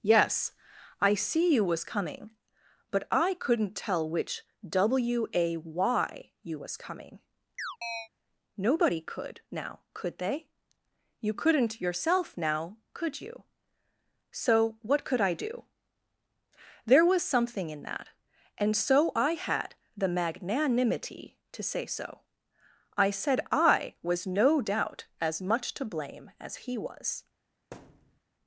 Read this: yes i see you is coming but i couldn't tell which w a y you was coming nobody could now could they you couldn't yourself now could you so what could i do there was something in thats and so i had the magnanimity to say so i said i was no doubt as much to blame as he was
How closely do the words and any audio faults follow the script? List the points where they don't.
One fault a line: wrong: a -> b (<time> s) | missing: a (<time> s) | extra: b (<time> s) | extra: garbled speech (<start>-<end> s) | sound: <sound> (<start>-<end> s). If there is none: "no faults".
wrong: is -> was (1.6 s)
sound: chirp (7.6-8.1 s)
wrong: thats -> that (17.8 s)
sound: thud (27.7-28.2 s)